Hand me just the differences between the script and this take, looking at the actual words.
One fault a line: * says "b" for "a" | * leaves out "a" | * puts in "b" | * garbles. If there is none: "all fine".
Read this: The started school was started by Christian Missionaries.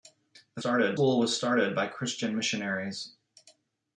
all fine